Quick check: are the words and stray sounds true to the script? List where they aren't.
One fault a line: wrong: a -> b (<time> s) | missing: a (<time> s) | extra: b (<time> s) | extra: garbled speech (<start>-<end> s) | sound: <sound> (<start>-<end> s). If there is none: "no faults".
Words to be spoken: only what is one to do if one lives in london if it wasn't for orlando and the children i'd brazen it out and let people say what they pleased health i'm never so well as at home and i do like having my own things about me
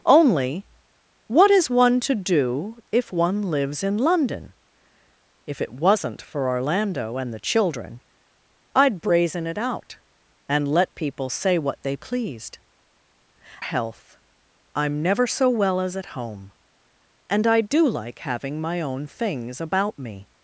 no faults